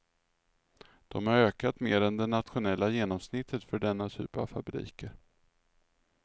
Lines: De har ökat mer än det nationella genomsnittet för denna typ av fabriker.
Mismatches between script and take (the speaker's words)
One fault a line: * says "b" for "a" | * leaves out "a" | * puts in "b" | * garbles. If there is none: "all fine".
all fine